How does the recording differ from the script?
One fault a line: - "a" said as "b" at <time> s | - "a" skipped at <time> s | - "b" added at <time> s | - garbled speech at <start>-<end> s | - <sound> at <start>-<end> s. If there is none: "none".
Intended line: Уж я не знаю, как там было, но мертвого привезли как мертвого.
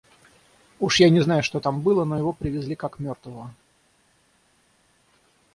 - "как" said as "что" at 1.4 s
- "мертвого" said as "его" at 2.2 s